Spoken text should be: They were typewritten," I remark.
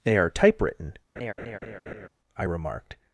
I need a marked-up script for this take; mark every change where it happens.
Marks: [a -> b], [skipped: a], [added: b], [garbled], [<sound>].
They [were -> are] typewritten," [laugh] I [remark. -> remarked]